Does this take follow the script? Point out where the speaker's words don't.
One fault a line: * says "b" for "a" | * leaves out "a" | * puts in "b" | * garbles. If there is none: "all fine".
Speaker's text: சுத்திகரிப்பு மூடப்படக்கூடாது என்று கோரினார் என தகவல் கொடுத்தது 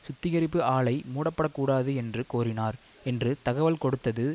* puts in "ஆலை"
* says "என்று" for "என"